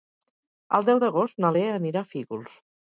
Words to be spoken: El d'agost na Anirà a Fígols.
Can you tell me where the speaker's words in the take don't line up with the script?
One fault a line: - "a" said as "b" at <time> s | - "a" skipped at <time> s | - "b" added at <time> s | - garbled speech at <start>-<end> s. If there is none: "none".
- "deu" added at 0.9 s
- "Lea" added at 1.6 s